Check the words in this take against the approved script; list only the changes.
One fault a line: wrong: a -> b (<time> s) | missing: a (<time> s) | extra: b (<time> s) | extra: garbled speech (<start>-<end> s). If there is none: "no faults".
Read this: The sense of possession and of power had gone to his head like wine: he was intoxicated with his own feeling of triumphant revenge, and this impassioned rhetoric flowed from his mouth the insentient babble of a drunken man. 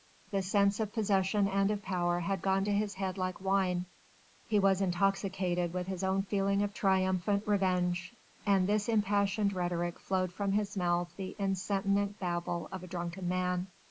no faults